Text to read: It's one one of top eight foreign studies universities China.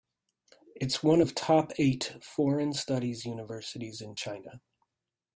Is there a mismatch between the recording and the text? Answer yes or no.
yes